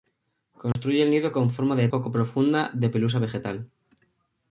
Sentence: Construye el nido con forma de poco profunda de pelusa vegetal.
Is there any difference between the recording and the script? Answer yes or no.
no